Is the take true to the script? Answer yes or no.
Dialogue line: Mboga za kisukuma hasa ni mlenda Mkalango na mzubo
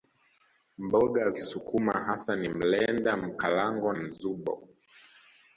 no